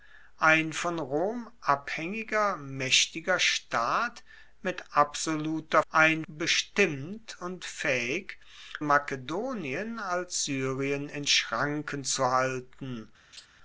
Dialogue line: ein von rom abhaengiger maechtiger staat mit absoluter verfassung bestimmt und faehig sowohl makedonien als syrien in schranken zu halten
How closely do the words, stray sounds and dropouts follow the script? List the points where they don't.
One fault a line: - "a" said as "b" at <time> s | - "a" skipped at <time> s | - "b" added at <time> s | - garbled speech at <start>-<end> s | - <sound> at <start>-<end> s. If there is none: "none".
- "verfassung" said as "ein" at 5.9 s
- "sowohl" skipped at 8.4 s
- laugh at 13.3-13.5 s